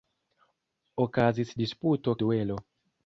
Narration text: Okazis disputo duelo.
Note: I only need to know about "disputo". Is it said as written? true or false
true